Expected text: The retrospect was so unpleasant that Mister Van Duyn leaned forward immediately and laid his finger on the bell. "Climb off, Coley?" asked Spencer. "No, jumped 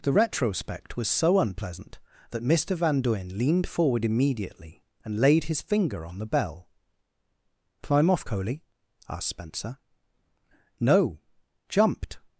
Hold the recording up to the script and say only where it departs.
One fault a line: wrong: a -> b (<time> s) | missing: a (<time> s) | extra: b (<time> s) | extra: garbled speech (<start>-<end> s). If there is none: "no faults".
no faults